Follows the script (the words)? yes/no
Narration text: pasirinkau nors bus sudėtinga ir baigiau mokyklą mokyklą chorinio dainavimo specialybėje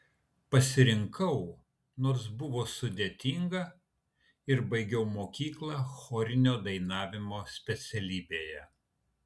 no